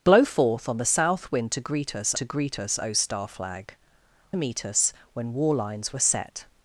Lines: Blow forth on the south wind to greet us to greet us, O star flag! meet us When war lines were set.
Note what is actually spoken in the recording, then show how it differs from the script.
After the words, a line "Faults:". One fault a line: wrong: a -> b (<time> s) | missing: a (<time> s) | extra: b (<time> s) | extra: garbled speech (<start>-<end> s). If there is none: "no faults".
Blow forth on the south wind to greet us to greet us, O star flag! meet us When war lines were set.
Faults:
no faults